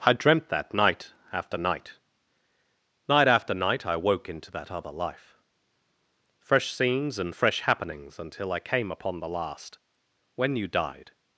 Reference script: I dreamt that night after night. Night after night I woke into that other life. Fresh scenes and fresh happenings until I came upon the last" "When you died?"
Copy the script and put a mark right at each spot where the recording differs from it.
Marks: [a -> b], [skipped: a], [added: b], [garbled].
I dreamt that night after night. Night after night I woke into that other life. Fresh scenes and fresh happenings until I came upon the last" "When you died?"